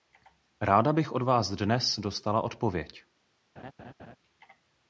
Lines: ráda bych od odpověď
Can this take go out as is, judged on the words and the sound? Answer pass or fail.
fail